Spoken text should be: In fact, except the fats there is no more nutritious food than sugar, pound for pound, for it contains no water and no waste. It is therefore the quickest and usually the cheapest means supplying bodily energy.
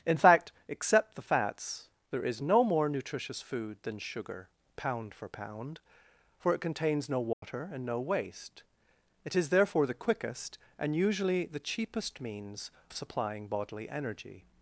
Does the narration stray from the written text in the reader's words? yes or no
no